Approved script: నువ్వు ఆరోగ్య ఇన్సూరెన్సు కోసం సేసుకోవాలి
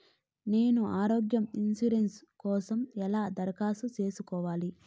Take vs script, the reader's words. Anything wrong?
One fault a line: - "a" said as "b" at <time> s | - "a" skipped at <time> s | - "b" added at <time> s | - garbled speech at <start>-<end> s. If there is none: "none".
- "నువ్వు" said as "నేను" at 0.5 s
- "ఎలా దరఖాస్తు" added at 3.0 s